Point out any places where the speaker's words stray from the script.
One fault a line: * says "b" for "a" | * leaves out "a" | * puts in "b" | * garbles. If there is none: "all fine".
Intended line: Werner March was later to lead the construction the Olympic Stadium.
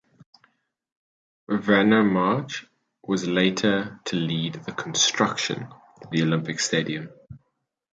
all fine